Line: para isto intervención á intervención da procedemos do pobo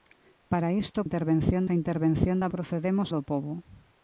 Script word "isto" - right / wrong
right